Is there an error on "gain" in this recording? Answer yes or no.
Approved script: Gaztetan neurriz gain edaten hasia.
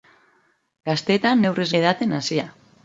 yes